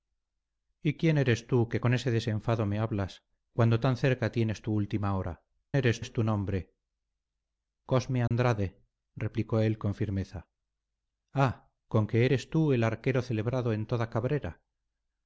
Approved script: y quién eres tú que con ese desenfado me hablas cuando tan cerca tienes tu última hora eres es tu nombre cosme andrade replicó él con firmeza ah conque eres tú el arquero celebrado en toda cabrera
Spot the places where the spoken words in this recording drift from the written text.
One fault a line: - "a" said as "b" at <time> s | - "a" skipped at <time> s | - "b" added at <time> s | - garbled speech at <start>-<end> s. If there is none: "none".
none